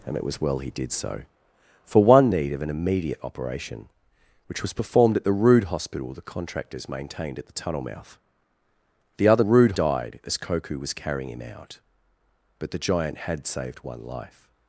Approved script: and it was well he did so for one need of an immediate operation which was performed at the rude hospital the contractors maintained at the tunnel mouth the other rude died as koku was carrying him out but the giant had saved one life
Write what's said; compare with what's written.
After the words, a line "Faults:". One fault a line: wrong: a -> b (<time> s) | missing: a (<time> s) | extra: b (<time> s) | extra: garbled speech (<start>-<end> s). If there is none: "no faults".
and it was well he did so for one need of an immediate operation which was performed at the rude hospital the contractors maintained at the tunnel mouth the other rude died as koku was carrying him out but the giant had saved one life
Faults:
no faults